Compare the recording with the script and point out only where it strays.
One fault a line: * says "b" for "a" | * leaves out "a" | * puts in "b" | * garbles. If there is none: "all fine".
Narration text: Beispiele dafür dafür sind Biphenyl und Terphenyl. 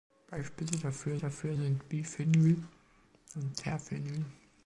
all fine